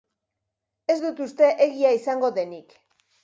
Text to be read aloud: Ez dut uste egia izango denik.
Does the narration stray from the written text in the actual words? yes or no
no